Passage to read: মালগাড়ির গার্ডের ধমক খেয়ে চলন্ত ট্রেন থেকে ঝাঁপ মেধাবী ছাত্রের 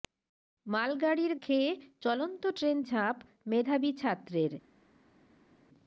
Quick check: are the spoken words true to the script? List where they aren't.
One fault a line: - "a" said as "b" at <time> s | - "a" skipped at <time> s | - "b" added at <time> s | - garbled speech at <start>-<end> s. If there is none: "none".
- "গার্ডের ধমক" skipped at 1.3 s
- "থেকে" skipped at 2.8 s